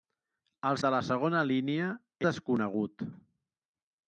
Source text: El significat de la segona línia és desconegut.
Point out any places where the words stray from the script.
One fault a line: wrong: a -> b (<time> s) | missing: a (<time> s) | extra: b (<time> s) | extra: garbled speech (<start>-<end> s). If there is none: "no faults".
missing: significat (0.8 s)
missing: és (1.9 s)